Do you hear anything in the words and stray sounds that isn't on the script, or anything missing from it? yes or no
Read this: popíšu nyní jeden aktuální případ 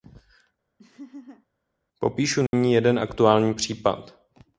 yes